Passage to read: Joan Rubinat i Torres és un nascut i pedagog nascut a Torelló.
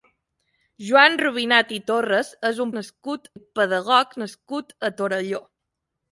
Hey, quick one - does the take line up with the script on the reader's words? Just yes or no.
yes